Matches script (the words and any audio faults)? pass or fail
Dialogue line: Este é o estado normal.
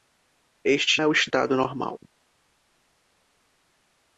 pass